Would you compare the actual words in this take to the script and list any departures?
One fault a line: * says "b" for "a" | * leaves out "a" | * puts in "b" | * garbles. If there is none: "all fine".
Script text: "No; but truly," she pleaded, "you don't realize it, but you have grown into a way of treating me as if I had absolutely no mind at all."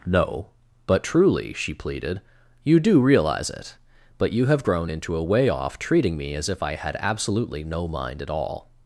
* says "do" for "don't"
* says "off" for "of"